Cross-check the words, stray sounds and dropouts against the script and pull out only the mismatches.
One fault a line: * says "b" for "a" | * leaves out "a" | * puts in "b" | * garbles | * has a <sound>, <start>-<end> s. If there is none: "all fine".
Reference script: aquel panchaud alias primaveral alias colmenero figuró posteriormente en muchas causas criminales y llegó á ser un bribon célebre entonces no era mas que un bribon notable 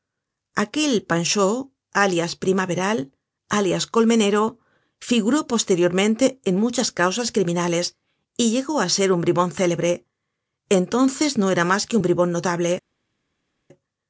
all fine